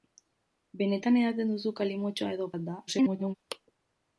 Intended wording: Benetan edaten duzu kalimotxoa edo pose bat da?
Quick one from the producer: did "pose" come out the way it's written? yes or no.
no